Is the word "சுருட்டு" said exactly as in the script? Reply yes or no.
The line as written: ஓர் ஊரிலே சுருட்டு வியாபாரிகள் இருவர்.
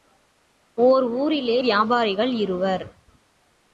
no